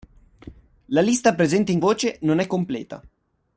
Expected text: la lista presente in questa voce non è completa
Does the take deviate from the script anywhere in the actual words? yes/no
yes